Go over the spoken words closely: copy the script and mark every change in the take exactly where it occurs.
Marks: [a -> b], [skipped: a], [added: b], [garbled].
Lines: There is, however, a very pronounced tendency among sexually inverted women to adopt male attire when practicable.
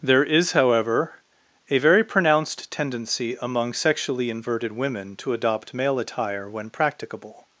There is, however, a very pronounced tendency among sexually inverted women to adopt male attire when practicable.